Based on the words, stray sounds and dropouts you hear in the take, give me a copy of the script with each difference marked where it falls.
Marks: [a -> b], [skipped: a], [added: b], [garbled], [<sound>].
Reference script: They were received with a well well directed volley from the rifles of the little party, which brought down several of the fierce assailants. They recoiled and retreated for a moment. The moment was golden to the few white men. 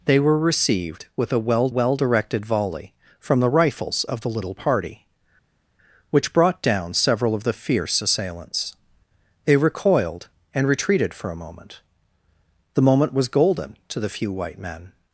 They were received with a well well directed volley from the rifles of the little party, which brought down several of the fierce assailants. They recoiled and retreated for a moment. The moment was golden to the few white men.